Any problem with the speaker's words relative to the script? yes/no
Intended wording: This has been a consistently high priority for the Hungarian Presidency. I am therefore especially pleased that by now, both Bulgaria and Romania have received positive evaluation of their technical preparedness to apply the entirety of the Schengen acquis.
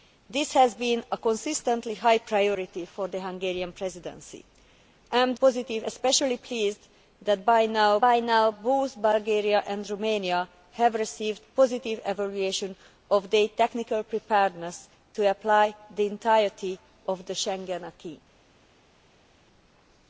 yes